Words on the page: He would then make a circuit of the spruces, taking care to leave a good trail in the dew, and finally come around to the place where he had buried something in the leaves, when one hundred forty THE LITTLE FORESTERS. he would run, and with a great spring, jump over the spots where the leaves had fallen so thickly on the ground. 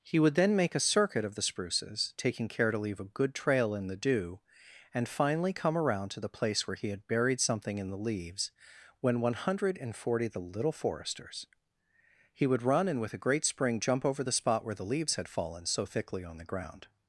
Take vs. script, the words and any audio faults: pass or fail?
fail